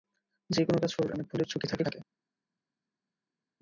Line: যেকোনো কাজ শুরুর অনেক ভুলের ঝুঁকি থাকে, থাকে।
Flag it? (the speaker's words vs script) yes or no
no